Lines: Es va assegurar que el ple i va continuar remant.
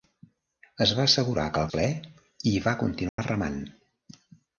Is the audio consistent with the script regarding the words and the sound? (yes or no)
no